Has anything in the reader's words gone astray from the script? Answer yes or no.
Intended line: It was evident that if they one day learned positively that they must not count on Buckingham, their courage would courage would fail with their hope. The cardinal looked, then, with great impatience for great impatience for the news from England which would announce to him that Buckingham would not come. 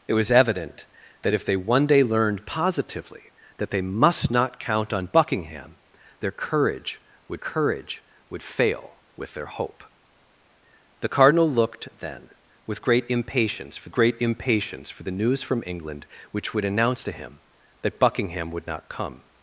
no